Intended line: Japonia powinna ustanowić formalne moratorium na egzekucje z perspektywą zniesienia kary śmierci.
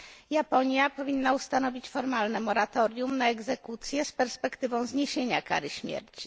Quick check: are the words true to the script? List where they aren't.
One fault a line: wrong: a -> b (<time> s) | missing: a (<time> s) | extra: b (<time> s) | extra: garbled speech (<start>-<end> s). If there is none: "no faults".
no faults